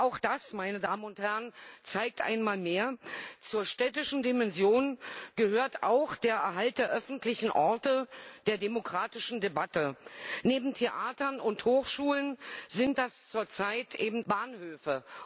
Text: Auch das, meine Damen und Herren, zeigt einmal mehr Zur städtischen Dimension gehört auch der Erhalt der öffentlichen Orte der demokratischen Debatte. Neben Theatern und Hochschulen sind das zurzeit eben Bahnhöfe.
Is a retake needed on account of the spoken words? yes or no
no